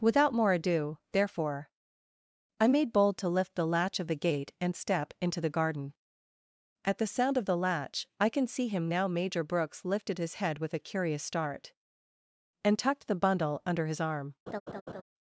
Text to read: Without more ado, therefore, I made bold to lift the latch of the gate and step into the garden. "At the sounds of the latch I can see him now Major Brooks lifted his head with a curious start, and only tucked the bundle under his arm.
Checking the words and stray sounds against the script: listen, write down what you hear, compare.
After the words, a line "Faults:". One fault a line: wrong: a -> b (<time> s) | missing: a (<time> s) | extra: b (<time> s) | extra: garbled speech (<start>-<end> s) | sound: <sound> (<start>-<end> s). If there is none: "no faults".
Without more ado, therefore, I made bold to lift the latch of the gate and step into the garden. "At the sound of the latch I can see him now Major Brooks lifted his head with a curious start, and tucked the bundle under his arm.
Faults:
wrong: sounds -> sound (7.0 s)
missing: only (12.8 s)
sound: laugh (14.5-15.0 s)